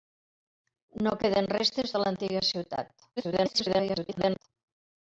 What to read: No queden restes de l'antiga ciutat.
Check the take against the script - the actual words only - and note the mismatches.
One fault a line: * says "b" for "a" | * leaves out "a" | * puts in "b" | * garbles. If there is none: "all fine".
* garbles